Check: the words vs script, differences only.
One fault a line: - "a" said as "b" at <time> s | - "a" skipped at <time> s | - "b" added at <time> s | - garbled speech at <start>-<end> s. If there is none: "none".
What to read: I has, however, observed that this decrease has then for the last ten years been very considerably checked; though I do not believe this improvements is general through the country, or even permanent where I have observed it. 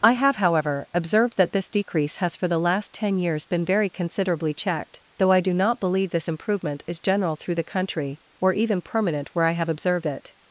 - "has" said as "have" at 0.1 s
- "then" skipped at 2.4 s
- "improvements" said as "improvement" at 6.3 s